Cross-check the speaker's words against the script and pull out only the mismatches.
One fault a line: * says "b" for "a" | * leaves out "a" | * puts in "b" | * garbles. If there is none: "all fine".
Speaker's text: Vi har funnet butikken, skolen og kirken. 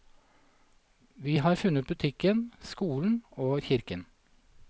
all fine